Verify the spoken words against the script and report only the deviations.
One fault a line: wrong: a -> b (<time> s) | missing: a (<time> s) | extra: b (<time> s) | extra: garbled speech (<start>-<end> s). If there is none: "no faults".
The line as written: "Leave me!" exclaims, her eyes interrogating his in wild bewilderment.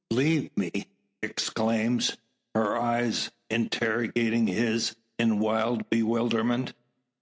no faults